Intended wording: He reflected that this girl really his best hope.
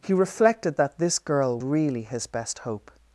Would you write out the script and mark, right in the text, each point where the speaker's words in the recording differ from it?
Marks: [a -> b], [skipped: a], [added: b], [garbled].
He reflected that this girl really his best hope.